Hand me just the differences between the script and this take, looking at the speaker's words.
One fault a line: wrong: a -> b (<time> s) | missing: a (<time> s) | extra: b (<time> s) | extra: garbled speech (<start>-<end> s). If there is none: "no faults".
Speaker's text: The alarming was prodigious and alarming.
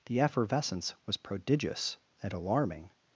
wrong: alarming -> effervescence (0.2 s)